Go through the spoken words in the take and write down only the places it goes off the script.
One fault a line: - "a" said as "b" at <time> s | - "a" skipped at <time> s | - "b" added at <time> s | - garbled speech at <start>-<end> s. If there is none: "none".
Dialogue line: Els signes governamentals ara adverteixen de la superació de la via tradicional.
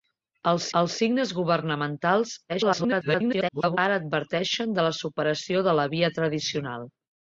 - "els" added at 0.8 s
- garbled speech at 2.5-3.8 s